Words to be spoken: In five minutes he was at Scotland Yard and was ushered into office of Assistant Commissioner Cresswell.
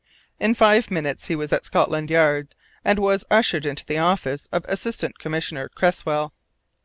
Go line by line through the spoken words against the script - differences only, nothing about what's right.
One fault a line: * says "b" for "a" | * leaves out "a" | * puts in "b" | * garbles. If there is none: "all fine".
* puts in "the"